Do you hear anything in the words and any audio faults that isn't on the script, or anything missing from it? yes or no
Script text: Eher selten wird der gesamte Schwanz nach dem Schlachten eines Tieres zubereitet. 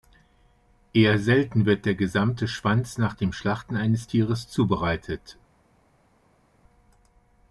no